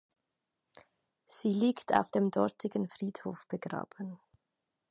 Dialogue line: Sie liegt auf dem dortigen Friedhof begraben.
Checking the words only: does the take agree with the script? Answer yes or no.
yes